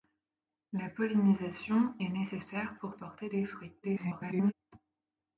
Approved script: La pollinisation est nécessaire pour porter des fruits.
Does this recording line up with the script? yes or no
no